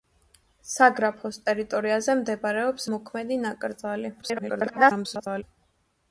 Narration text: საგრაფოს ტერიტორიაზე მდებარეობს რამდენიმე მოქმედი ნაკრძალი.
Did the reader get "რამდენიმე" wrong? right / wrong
wrong